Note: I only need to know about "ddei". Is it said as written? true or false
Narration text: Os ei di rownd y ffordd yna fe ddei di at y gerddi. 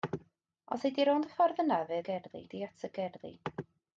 false